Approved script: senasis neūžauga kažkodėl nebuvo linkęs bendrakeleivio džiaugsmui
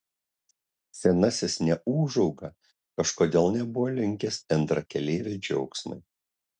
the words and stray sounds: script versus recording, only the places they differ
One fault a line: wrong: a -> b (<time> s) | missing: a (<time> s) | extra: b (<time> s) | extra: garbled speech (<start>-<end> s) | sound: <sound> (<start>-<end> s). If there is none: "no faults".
no faults